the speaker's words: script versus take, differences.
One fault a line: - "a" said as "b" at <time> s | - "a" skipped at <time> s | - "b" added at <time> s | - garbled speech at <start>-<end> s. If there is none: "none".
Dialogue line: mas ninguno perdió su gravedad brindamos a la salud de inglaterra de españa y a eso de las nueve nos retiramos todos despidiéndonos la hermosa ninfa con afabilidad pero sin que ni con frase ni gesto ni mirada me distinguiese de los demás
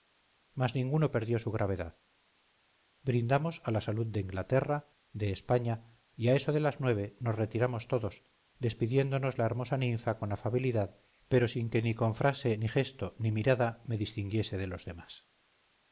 none